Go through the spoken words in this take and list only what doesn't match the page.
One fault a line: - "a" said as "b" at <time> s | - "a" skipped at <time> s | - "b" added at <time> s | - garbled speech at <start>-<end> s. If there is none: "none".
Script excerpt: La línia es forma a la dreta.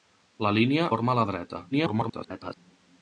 - "es" skipped at 0.9 s
- garbled speech at 1.7-2.6 s